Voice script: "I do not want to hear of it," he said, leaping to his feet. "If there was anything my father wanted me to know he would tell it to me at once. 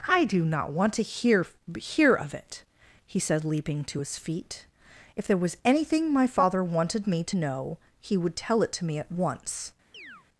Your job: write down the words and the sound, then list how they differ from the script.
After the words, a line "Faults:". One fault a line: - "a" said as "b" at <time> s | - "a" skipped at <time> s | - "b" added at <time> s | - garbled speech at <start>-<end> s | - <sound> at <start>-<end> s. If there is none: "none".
"I do not want to hear hear of it," he said, leaping to his feet. "If there was anything my father wanted me to know he would tell it to me at once.
Faults:
- "hear" added at 1.8 s
- chirp at 9.9-10.3 s